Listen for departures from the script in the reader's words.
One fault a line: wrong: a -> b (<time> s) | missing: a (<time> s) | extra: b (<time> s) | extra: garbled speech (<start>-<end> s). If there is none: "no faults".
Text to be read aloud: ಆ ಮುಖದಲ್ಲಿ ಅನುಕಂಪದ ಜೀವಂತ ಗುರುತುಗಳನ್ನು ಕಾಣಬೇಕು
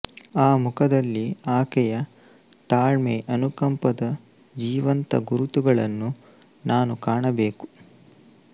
extra: ಆಕೆಯ ತಾಳ್ಮೆ (1.5 s)
extra: ನಾನು (6.7 s)